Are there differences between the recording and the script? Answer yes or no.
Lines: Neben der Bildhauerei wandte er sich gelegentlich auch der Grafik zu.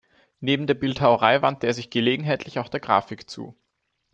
no